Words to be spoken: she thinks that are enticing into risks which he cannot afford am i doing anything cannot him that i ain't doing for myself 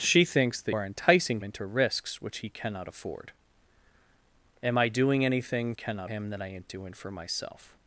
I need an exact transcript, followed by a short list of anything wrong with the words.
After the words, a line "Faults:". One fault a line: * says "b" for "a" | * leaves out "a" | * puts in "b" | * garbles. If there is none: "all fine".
she thinks that are enticing into risks which he cannot afford am i doing anything cannot him that i ain't doing for myself
Faults:
all fine